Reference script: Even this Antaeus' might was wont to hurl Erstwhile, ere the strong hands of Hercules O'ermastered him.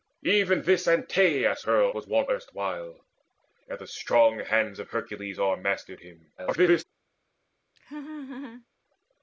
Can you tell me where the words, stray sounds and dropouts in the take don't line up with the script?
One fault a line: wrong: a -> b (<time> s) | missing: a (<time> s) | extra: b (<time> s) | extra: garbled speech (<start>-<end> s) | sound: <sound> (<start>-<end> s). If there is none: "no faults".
wrong: might -> hurl (1.6 s)
missing: to hurl (2.3 s)
extra: garbled speech (6.4-6.8 s)
sound: laugh (7.8-8.7 s)